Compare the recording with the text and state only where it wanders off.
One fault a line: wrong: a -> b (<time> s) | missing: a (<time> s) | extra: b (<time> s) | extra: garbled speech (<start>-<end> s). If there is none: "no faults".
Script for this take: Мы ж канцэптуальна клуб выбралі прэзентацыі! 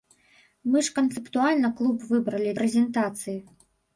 no faults